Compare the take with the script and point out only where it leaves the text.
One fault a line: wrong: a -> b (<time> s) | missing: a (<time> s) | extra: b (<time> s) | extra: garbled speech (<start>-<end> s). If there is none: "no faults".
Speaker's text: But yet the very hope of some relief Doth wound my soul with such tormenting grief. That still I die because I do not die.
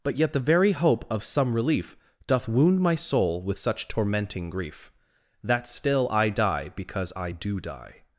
missing: not (7.6 s)